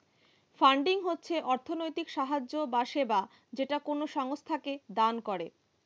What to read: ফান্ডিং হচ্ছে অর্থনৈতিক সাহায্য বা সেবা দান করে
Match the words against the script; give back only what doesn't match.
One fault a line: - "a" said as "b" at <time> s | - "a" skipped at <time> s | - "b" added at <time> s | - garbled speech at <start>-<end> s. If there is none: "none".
- "যেটা কোনো সংস্থাকে" added at 3.5 s